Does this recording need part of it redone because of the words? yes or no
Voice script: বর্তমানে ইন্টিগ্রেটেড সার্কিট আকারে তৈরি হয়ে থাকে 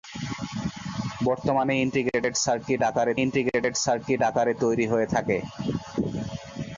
yes